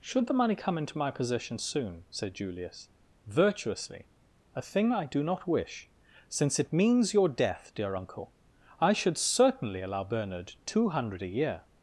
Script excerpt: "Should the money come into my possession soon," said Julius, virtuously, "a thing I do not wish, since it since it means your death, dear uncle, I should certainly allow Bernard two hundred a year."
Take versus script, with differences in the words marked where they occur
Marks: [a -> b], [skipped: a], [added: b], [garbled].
"Should the money come into my possession soon," said Julius, virtuously, "a thing I do not wish, since it [skipped: since it] means your death, dear uncle, I should certainly allow Bernard two hundred a year."